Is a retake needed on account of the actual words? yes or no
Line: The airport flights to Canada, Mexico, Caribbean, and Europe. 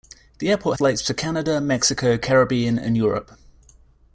no